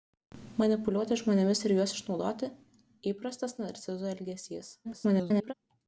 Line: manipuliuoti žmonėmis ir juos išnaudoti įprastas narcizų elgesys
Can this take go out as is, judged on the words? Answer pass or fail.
fail